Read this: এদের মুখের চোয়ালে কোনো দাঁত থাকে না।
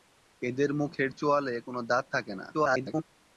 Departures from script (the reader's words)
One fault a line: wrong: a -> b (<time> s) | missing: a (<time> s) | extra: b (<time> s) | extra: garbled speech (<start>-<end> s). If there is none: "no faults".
extra: garbled speech (2.5-3.0 s)